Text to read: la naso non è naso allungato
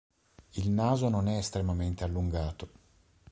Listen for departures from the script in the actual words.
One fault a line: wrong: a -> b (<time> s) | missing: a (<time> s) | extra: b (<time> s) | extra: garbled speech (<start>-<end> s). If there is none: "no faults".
wrong: la -> il (0.5 s)
wrong: naso -> estremamente (1.4 s)